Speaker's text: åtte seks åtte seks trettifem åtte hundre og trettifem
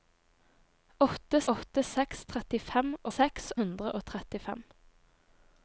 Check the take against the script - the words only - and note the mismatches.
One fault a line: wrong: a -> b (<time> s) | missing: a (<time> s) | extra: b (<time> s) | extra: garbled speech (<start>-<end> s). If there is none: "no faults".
missing: seks (1.4 s)
wrong: åtte -> seks (3.1 s)